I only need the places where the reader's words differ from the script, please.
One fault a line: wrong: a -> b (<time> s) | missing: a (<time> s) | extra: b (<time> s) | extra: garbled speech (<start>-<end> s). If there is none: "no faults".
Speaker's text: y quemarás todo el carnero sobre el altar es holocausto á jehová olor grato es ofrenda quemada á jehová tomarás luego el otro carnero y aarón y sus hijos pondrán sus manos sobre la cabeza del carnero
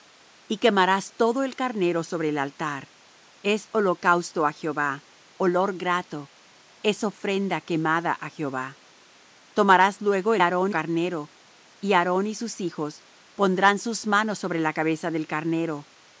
wrong: otro -> aarón (10.4 s)